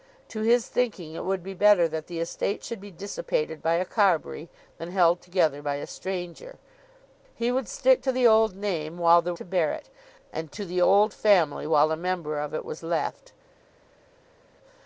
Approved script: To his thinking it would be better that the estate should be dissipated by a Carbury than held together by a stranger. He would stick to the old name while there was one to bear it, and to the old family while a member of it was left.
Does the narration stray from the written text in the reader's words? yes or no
yes